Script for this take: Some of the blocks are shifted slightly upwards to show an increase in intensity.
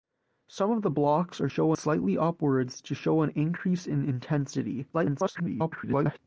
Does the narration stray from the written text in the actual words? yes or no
yes